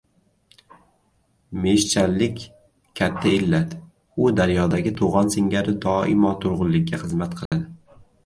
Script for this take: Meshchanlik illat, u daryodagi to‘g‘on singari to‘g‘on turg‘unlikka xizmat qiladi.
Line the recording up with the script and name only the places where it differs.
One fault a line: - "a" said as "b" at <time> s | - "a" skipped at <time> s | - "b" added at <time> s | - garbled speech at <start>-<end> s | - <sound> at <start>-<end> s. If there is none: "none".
- "katta" added at 3.0 s
- "to‘g‘on" said as "doimo" at 5.9 s
- dropout at 7.5-7.5 s